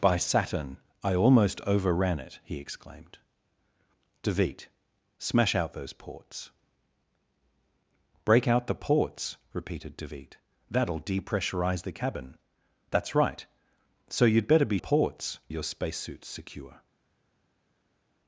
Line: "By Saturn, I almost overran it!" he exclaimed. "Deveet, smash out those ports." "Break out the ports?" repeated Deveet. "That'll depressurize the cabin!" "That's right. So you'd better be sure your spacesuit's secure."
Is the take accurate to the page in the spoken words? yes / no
no